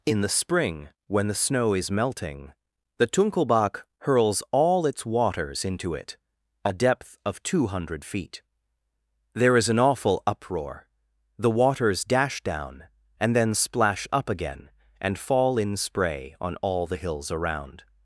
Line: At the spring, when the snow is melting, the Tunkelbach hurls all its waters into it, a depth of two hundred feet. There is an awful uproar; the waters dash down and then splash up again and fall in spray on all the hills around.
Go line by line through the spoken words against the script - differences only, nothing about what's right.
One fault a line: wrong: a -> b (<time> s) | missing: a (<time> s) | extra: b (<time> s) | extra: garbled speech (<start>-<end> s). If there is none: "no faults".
wrong: At -> In (0.0 s)